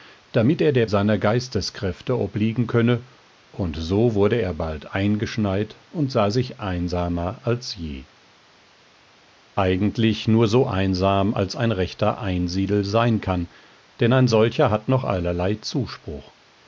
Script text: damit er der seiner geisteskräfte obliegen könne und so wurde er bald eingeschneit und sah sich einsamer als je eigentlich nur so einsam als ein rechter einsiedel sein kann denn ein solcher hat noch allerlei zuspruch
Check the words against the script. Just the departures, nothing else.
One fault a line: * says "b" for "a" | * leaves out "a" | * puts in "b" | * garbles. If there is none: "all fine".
all fine